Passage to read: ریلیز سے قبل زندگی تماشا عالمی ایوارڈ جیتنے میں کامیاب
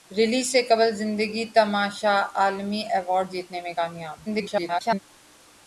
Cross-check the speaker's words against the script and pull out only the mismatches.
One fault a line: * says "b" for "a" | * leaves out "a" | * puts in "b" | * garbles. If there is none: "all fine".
* garbles